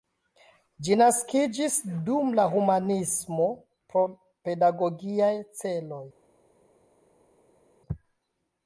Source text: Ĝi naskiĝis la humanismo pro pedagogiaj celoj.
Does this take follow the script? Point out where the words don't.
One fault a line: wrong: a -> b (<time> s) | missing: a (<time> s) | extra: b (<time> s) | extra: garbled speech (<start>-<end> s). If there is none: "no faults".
extra: dum (2.1 s)